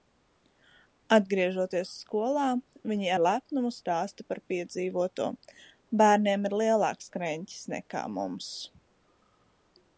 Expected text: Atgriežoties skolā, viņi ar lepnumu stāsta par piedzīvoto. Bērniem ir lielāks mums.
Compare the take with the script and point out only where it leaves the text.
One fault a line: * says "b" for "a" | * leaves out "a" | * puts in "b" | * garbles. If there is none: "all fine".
* puts in "kreņķis nekā"